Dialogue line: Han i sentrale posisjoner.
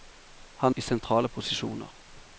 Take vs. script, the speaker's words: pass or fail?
pass